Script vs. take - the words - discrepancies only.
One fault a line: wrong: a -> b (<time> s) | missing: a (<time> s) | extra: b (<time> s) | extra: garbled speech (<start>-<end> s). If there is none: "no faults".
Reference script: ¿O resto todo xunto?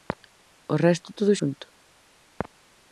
no faults